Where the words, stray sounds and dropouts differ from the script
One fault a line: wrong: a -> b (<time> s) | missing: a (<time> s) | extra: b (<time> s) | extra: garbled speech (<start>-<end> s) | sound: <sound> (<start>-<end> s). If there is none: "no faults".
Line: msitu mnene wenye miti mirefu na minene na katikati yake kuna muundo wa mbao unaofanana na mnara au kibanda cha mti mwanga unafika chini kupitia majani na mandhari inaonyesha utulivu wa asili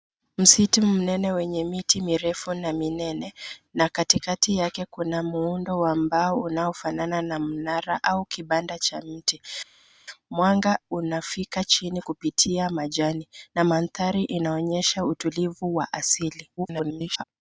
extra: garbled speech (16.6-17.2 s)